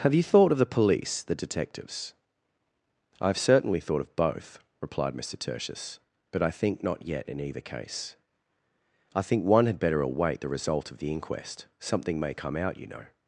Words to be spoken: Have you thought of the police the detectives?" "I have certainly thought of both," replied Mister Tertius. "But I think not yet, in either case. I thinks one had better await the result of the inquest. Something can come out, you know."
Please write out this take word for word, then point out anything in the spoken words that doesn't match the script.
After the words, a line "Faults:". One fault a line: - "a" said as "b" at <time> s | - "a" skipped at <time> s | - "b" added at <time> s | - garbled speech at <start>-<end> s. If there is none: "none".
Have you thought of the police the detectives?" "I have certainly thought of both," replied Mister Tertius. "But I think not yet, in either case. I think one had better await the result of the inquest. Something may come out, you know."
Faults:
- "thinks" said as "think" at 9.2 s
- "can" said as "may" at 12.2 s